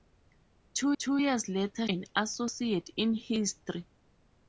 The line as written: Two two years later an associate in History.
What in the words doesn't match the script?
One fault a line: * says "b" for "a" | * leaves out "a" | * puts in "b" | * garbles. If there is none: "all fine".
all fine